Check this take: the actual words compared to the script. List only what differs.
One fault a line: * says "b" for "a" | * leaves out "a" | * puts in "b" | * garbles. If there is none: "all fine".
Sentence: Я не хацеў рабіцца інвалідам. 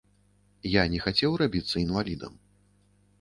all fine